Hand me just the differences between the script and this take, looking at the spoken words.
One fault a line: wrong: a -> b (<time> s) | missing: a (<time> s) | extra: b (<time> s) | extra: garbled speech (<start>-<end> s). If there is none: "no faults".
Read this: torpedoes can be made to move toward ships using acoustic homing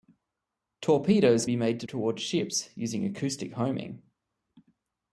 missing: can (1.4 s)
missing: move (1.9 s)